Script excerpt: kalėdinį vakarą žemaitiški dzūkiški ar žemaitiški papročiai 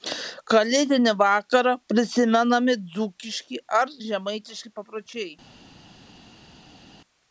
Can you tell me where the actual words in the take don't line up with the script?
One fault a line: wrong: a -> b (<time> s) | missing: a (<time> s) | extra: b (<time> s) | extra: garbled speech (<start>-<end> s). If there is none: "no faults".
wrong: žemaitiški -> prisimenami (1.9 s)